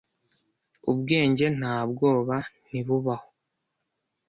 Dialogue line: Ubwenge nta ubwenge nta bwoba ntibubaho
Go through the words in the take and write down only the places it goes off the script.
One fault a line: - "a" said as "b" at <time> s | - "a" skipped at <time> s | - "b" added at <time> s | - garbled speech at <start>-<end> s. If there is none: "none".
- "ubwenge nta" skipped at 1.8 s